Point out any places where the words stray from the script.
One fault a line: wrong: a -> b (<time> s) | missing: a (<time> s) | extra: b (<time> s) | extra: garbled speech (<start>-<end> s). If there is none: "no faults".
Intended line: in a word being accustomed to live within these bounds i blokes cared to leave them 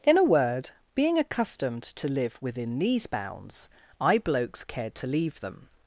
no faults